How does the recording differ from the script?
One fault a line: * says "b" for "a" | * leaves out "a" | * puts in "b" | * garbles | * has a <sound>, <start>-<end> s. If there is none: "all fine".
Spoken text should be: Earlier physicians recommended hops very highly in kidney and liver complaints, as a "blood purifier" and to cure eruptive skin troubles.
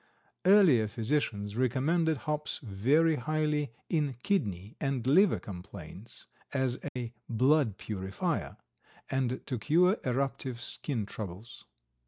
* has a dropout, 6.9-7.0 s